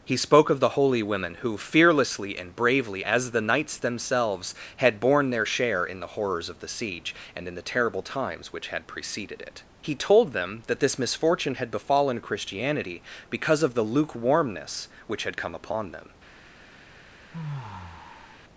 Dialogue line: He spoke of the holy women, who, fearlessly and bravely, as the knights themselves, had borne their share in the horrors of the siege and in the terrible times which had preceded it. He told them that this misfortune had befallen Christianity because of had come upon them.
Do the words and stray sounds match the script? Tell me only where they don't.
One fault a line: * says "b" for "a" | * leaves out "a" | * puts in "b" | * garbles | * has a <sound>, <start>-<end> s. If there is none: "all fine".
* puts in "the lukewarmness which"
* has a sigh, 17.3-18.4 s